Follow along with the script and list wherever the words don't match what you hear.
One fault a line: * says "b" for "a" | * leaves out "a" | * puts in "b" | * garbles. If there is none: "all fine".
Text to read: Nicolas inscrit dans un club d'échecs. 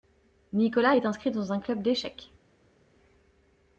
* puts in "est"